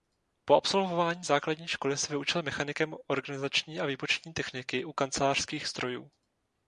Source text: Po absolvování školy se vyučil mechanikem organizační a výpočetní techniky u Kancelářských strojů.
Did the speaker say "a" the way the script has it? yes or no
yes